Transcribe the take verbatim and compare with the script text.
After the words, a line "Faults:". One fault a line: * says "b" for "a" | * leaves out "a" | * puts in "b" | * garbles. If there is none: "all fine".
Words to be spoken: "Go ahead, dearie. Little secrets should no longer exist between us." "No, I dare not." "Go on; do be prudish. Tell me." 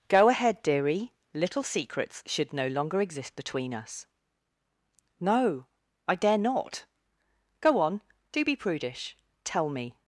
"Go ahead, dearie. Little secrets should no longer exist between us." "No, I dare not." "Go on; do be prudish. Tell me."
Faults:
all fine